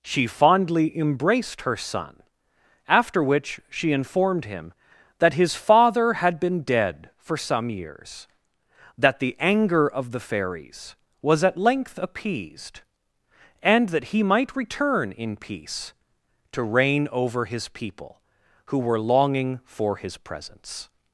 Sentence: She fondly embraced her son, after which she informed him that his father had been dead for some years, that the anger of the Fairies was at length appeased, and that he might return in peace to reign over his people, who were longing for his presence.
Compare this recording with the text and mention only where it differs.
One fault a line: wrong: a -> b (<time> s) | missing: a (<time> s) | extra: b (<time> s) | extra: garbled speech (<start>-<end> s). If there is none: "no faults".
no faults